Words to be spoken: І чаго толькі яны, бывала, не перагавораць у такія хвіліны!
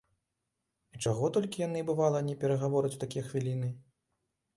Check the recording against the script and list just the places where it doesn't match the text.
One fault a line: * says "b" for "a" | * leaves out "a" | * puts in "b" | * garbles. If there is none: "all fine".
all fine